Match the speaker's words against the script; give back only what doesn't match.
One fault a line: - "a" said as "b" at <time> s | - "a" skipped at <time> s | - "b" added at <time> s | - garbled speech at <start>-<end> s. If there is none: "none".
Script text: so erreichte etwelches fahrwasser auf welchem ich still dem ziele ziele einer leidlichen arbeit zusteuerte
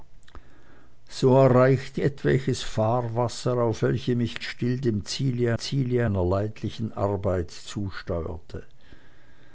none